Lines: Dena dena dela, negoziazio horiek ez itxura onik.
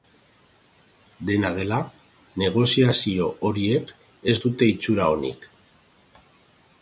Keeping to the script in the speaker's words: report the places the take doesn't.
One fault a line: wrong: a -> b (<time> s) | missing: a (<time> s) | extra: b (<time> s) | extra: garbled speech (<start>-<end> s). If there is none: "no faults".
missing: dena (1.5 s)
extra: dute (4.4 s)